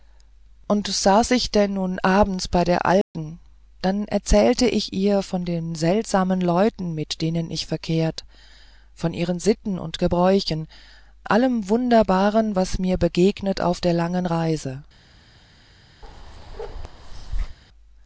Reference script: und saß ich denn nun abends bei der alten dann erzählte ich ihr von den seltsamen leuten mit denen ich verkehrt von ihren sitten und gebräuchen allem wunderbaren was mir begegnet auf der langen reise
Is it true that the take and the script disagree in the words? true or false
false